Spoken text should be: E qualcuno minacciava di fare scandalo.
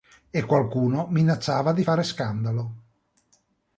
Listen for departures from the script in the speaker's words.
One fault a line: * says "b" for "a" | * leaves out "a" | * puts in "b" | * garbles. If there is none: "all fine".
all fine